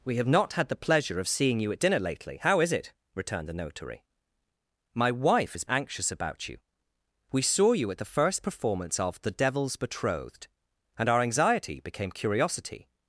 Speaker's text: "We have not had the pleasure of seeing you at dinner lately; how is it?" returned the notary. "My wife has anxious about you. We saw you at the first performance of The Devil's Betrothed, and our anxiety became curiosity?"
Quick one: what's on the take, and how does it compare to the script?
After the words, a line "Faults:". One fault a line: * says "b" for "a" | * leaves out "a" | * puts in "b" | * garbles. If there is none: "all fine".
"We have not had the pleasure of seeing you at dinner lately; how is it?" returned the notary. "My wife has anxious about you. We saw you at the first performance of The Devil's Betrothed, and our anxiety became curiosity?"
Faults:
all fine